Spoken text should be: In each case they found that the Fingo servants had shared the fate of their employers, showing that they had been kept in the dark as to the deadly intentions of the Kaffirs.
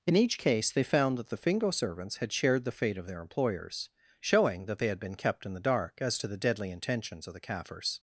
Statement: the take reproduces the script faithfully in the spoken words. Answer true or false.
true